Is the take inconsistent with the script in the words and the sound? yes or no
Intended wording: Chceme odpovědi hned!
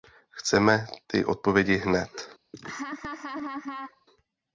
yes